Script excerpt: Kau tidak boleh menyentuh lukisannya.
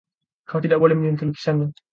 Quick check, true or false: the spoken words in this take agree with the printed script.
true